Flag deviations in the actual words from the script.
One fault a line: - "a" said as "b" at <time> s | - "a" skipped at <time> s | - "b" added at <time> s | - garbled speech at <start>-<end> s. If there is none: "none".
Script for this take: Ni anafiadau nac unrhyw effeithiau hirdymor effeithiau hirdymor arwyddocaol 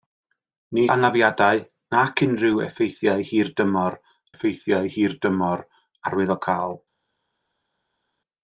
none